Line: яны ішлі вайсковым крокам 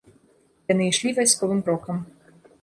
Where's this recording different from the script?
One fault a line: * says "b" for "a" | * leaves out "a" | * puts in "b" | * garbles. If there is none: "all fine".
all fine